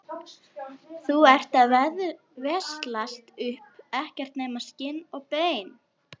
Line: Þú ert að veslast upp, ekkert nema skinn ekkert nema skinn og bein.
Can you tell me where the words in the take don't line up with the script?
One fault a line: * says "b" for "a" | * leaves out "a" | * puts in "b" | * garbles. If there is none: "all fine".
* leaves out "ekkert nema skinn"